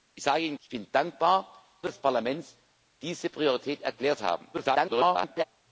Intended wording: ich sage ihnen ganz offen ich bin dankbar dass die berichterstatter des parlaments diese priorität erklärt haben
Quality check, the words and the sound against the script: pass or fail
fail